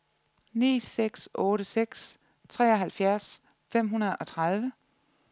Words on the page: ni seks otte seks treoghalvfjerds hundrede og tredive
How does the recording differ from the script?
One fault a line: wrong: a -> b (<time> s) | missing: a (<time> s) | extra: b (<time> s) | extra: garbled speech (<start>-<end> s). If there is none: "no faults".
extra: fem (3.7 s)